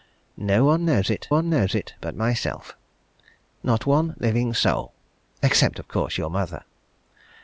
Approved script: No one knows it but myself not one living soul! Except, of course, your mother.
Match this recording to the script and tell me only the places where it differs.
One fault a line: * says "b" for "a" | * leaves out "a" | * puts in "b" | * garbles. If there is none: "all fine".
* puts in "one knows it"